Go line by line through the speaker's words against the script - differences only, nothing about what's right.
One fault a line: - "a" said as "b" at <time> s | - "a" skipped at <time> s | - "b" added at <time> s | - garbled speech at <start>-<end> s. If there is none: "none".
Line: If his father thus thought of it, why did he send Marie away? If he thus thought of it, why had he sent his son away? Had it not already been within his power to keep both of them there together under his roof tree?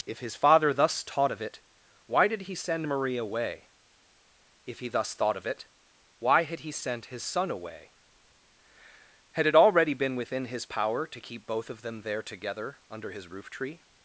- "thought" said as "taught" at 1.0 s
- "not" skipped at 9.5 s